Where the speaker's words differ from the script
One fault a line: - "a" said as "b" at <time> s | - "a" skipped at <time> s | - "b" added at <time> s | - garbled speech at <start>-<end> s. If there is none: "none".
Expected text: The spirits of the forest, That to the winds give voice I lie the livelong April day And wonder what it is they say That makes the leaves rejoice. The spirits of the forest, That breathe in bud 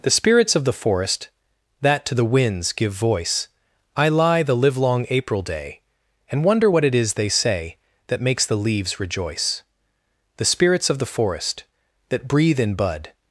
none